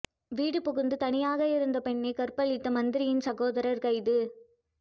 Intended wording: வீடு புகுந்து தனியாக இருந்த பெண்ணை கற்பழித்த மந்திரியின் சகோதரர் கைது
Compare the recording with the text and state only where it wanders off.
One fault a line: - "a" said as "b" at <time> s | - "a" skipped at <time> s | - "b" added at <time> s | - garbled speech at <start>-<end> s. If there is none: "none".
none